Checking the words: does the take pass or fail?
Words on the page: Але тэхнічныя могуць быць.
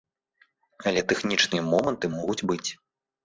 fail